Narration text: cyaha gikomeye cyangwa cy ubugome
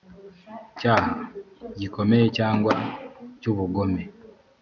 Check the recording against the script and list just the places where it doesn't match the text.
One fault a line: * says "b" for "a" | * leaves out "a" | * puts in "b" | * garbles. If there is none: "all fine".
all fine